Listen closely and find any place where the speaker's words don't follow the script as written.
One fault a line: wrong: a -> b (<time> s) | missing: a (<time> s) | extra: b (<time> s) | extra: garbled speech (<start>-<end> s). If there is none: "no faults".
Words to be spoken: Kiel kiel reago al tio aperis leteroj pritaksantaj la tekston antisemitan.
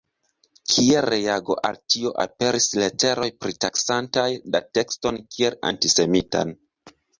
missing: kiel (1.0 s)
extra: kiel (5.4 s)